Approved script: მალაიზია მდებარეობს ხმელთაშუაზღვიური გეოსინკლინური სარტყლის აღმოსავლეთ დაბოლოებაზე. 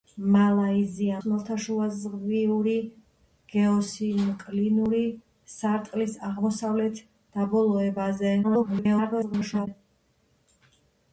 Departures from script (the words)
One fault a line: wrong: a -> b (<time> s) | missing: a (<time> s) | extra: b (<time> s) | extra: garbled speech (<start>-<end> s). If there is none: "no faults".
missing: მდებარეობს (1.2 s)
extra: garbled speech (8.4-9.7 s)